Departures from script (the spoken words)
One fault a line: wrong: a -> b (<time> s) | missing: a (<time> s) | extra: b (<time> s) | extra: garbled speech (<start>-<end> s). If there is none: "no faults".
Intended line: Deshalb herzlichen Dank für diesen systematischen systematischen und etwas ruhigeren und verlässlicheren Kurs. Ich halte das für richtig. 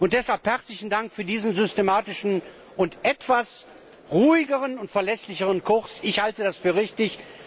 missing: systematischen (2.4 s)